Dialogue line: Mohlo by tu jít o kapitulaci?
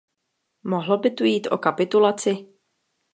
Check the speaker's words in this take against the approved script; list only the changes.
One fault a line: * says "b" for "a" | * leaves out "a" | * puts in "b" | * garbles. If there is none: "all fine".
all fine